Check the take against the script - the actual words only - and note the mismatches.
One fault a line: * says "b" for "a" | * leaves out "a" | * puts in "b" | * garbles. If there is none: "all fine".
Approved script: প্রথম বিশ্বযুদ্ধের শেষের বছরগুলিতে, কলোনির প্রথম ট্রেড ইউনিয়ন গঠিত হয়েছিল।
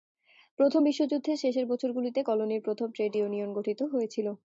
all fine